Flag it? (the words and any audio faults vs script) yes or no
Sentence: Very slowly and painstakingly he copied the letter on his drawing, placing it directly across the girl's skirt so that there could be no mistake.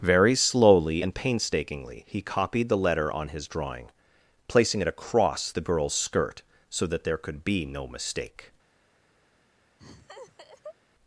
yes